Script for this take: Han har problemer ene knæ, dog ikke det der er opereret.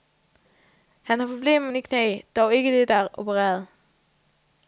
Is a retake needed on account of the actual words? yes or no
no